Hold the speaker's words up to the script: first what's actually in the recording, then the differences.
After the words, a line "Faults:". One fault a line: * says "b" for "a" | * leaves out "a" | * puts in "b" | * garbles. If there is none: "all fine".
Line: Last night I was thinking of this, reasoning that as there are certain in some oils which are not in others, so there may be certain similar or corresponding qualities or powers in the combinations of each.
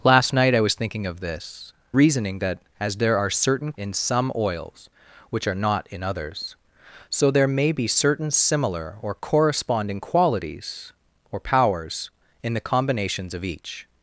Last night I was thinking of this, reasoning that as there are certain in some oils which are not in others, so there may be certain similar or corresponding qualities or powers in the combinations of each.
Faults:
all fine